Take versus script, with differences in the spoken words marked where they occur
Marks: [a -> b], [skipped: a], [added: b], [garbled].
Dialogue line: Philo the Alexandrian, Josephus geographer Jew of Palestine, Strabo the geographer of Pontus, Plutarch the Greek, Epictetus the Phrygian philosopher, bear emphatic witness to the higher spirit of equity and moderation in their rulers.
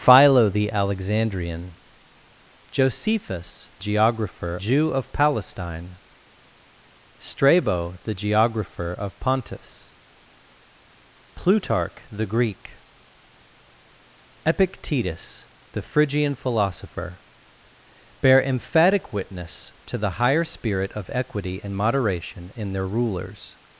Philo the Alexandrian, Josephus geographer Jew of Palestine, Strabo the geographer of Pontus, Plutarch the Greek, Epictetus the Phrygian philosopher, bear emphatic witness to the higher spirit of equity and moderation in their rulers.